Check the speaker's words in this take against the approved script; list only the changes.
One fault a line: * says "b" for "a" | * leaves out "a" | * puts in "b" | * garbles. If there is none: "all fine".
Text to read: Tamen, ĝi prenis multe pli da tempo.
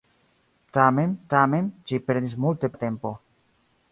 * puts in "tamen"
* leaves out "pli"